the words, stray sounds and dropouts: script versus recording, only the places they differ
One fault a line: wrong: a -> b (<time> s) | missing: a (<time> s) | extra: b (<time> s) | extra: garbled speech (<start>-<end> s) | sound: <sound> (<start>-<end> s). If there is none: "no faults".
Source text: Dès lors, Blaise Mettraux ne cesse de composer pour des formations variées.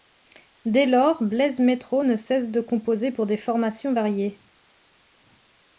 no faults